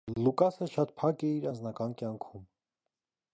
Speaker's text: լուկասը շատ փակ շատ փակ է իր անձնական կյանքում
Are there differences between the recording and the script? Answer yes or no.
yes